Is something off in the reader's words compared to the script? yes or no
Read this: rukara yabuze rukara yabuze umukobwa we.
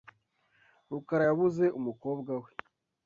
yes